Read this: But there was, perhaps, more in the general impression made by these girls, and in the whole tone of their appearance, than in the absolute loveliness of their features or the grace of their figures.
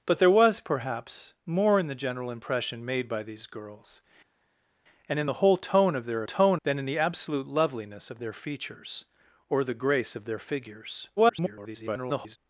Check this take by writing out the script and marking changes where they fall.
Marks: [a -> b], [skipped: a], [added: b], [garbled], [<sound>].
But there was, perhaps, more in the general impression made by these girls, and in the whole tone of their [appearance, -> tone] than in the absolute loveliness of their features or the grace of their figures. [garbled]